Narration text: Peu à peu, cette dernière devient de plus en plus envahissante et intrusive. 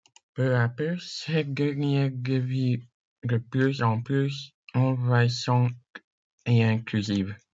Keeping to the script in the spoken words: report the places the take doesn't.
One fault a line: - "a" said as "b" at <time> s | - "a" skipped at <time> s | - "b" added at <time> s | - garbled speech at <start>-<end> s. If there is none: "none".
none